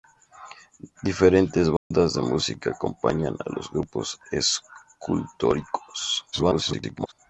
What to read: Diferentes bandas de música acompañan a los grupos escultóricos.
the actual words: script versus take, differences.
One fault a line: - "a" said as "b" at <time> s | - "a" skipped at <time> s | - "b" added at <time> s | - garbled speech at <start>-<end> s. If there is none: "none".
- garbled speech at 6.3-7.1 s